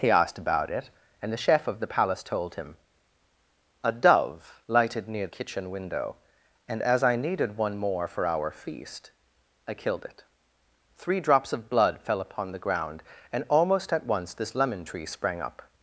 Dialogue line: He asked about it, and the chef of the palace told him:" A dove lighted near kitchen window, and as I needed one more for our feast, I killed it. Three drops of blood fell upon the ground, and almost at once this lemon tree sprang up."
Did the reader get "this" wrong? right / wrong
right